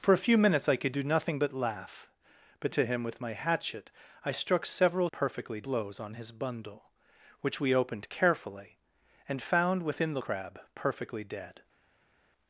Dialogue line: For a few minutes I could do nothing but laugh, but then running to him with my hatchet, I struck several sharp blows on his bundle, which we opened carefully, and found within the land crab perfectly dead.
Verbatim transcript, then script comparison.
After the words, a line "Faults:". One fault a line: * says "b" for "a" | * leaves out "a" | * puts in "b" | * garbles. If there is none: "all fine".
For a few minutes I could do nothing but laugh, but to him with my hatchet, I struck several perfectly blows on his bundle, which we opened carefully, and found within the crab perfectly dead.
Faults:
* leaves out "then running"
* says "perfectly" for "sharp"
* leaves out "land"